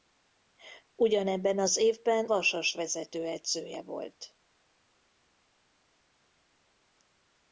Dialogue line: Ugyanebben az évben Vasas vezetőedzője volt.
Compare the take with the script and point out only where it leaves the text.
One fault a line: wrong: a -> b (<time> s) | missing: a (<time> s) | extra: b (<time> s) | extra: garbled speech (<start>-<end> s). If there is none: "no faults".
no faults